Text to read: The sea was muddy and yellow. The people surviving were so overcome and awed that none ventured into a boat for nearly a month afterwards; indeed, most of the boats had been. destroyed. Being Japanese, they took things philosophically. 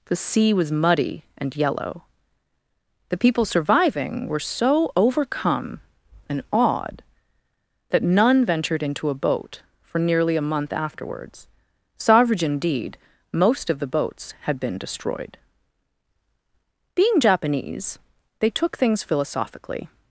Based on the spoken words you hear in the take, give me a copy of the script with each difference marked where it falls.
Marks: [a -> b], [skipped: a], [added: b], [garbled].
The sea was muddy and yellow. The people surviving were so overcome and awed that none ventured into a boat for nearly a month afterwards; [added: savage] indeed, most of the boats had been. destroyed. Being Japanese, they took things philosophically.